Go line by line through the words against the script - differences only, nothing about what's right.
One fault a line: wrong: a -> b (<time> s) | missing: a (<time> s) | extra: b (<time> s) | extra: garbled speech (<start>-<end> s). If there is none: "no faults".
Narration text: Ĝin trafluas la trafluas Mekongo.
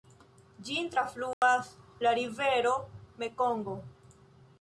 wrong: trafluas -> rivero (2.2 s)